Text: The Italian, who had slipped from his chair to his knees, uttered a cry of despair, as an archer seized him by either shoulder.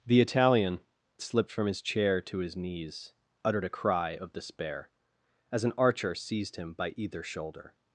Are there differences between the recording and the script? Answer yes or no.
yes